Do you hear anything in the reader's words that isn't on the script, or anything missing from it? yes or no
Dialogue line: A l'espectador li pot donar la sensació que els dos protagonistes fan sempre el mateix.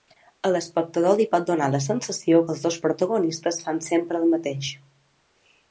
no